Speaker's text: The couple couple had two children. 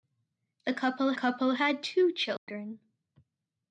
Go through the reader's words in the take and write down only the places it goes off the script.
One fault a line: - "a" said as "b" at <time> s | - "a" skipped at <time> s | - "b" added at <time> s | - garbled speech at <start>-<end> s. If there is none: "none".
none